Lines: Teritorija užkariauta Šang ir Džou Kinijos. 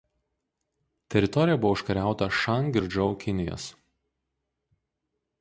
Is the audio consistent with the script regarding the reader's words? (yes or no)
no